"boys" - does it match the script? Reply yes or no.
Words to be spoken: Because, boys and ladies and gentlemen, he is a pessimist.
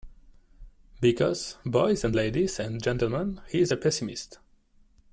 yes